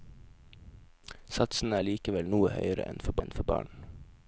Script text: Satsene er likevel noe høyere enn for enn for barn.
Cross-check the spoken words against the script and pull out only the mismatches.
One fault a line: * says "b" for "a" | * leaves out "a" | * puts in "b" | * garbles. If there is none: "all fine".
all fine